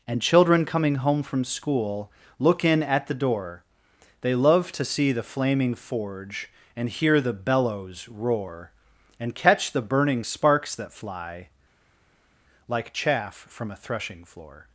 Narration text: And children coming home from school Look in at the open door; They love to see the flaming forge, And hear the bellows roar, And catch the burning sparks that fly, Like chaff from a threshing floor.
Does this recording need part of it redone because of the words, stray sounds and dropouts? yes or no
yes